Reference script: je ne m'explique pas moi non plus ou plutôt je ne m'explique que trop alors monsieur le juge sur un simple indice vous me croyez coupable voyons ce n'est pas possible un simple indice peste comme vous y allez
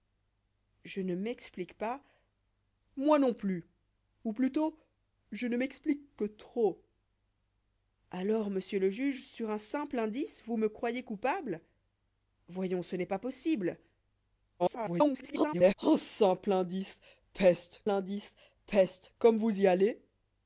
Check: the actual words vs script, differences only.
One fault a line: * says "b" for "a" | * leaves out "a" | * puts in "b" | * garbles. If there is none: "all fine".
* garbles
* puts in "indice peste"